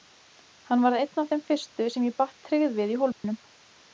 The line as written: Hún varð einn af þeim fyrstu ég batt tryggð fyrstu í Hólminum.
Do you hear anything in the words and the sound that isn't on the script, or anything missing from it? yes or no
yes